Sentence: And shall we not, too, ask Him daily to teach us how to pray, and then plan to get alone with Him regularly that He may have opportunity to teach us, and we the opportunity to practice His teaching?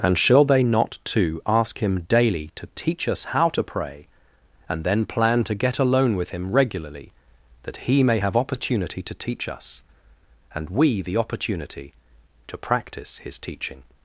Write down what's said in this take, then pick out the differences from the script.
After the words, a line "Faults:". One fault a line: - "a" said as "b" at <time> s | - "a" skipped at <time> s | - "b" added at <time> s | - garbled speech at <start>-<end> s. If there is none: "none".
And shall they not, too, ask Him daily to teach us how to pray, and then plan to get alone with Him regularly that He may have opportunity to teach us, and we the opportunity to practice His teaching?
Faults:
- "we" said as "they" at 0.5 s